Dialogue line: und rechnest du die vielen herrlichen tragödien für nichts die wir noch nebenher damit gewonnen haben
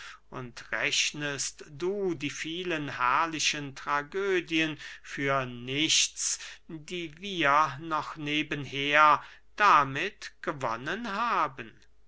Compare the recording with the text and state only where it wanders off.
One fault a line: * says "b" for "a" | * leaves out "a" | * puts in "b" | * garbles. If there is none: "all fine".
all fine